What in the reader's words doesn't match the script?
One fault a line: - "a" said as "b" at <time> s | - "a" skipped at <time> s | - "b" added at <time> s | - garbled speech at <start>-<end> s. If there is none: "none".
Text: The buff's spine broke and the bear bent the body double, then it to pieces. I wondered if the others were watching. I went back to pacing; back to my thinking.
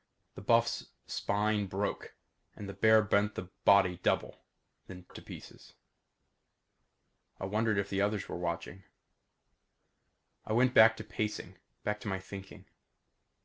none